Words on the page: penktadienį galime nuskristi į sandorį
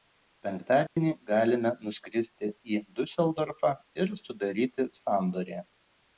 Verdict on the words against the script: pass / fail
fail